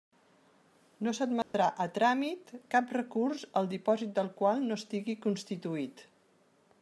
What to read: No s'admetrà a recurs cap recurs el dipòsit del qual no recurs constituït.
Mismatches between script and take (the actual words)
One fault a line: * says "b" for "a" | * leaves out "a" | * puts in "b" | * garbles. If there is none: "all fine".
* says "tràmit" for "recurs"
* says "estigui" for "recurs"